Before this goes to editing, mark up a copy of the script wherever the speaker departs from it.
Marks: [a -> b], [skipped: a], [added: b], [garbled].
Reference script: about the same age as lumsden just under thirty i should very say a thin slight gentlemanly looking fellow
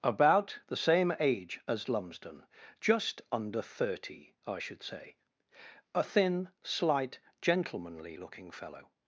about the same age as lumsden just under thirty i should [skipped: very] say a thin slight gentlemanly looking fellow